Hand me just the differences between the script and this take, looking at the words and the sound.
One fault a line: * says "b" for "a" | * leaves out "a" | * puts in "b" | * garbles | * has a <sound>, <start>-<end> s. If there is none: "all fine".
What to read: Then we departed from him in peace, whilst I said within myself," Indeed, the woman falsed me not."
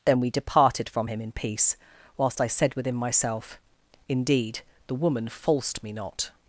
all fine